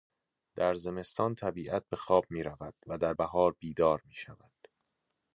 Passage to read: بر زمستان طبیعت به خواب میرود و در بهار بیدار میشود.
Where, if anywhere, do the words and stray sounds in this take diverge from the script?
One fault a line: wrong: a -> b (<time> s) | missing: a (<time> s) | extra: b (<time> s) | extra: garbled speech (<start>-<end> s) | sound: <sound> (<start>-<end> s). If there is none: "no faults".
wrong: بر -> در (0.6 s)